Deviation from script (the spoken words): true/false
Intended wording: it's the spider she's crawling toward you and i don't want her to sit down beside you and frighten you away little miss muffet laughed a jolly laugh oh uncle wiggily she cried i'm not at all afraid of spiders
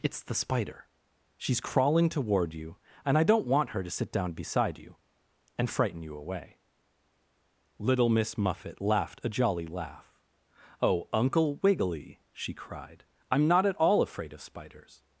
false